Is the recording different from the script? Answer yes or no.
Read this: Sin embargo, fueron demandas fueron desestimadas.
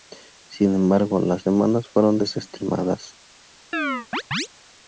yes